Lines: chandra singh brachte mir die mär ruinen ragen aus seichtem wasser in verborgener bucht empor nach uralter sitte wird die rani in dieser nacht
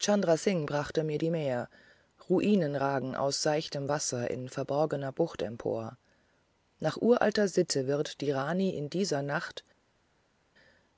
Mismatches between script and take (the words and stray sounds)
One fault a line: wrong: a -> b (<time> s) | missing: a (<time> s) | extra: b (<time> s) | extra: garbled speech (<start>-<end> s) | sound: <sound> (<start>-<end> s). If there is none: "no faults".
no faults